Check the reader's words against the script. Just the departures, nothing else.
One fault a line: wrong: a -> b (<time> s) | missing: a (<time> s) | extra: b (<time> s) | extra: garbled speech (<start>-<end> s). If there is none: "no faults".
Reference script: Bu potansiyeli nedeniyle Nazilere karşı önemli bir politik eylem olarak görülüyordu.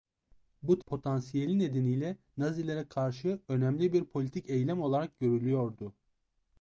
no faults